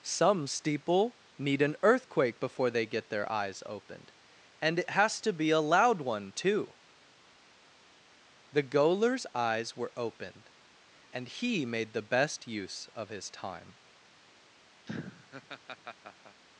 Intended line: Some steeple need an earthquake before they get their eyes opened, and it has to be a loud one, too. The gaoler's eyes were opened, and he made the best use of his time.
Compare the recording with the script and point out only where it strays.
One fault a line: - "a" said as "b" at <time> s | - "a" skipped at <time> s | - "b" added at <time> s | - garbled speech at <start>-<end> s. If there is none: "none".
none